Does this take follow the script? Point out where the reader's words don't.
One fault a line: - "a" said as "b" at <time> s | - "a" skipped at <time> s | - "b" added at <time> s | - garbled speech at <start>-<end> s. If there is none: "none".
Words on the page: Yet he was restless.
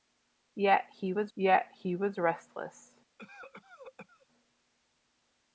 - "yet he was" added at 1.4 s